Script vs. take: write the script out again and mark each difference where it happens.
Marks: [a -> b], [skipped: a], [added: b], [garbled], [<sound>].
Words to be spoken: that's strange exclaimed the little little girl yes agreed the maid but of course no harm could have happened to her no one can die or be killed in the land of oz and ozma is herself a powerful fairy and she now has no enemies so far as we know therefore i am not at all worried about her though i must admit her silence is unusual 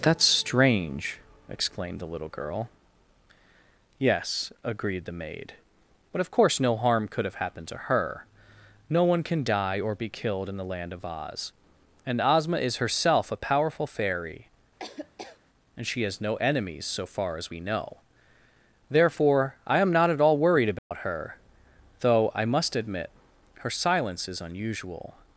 that's strange exclaimed the little [skipped: little] girl yes agreed the maid but of course no harm could have happened to her no one can die or be killed in the land of oz and ozma is herself a powerful fairy [laugh] and she [skipped: now] has no enemies so far as we know therefore i am not at all worried about [dropout] her though i must admit her silence is unusual